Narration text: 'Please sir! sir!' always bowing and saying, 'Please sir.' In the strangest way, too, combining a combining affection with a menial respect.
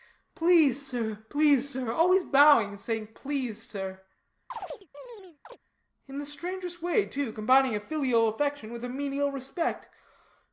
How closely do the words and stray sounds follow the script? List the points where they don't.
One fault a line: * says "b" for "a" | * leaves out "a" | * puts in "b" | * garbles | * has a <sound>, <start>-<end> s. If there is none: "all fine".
* puts in "please"
* has a chirp, 4.5-5.6 s
* says "filial" for "combining"